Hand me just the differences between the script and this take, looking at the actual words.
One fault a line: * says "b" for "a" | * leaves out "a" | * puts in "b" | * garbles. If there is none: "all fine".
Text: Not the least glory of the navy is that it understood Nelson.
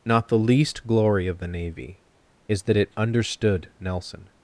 all fine